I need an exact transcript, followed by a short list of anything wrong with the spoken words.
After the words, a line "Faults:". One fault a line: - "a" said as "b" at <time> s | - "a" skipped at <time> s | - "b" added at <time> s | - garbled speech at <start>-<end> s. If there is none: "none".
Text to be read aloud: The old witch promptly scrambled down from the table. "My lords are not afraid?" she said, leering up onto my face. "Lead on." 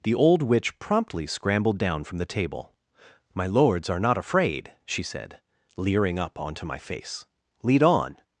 The old witch promptly scrambled down from the table. "My lords are not afraid?" she said, leering up onto my face. "Lead on."
Faults:
none